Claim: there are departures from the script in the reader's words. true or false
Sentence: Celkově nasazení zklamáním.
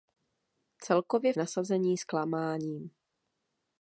false